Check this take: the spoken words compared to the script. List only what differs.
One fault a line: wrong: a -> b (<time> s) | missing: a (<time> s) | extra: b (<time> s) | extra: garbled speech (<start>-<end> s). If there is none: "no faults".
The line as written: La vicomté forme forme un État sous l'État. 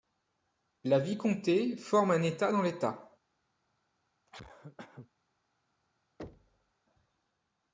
missing: forme (2.1 s)
wrong: sous -> dans (2.5 s)